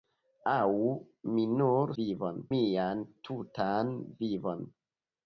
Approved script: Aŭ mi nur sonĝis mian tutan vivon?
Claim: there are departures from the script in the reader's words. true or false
true